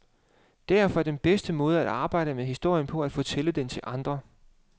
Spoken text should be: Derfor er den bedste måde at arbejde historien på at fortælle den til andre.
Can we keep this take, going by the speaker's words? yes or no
no